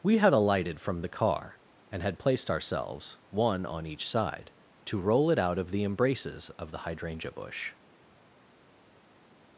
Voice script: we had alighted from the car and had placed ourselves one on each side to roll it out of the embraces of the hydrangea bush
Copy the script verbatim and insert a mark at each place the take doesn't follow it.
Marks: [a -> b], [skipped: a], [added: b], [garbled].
we had alighted from the car and had placed ourselves one on each side to roll it out of the embraces of the hydrangea bush